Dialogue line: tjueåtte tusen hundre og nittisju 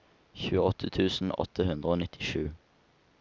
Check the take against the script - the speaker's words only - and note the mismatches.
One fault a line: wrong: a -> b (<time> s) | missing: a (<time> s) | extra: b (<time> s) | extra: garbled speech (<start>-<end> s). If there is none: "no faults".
extra: åtte (1.4 s)